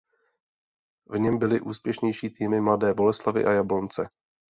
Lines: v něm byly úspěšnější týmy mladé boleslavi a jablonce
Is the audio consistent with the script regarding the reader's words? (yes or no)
yes